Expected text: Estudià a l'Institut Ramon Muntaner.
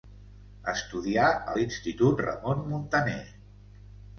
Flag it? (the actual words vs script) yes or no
no